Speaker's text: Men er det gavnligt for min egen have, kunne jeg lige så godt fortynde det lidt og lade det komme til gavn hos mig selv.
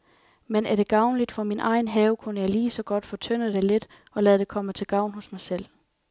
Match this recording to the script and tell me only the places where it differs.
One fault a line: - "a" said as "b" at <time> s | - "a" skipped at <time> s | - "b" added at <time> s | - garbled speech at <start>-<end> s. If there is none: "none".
none